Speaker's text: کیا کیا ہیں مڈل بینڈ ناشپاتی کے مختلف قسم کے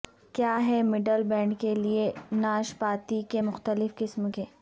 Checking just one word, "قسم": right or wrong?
right